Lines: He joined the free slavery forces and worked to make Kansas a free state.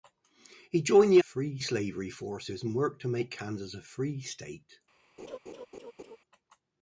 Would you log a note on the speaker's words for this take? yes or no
no